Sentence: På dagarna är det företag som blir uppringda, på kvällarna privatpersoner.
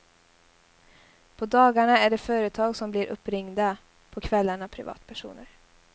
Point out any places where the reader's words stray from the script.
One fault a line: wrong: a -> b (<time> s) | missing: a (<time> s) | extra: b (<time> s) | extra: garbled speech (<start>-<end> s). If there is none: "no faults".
no faults